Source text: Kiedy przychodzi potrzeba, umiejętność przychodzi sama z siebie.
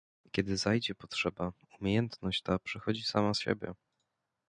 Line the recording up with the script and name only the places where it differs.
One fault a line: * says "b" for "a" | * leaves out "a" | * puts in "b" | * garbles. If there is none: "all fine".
* says "zajdzie" for "przychodzi"
* puts in "ta"